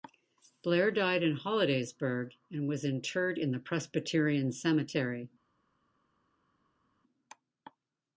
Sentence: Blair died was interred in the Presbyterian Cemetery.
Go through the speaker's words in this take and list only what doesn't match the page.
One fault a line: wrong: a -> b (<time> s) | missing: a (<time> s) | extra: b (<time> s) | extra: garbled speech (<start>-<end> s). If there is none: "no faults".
extra: in Hollidaysburg and (1.2 s)